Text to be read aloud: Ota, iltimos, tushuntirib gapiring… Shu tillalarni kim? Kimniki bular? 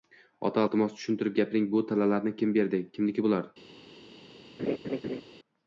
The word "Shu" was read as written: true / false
false